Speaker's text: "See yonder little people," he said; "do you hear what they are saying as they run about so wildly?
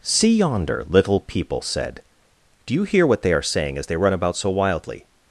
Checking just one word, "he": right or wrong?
wrong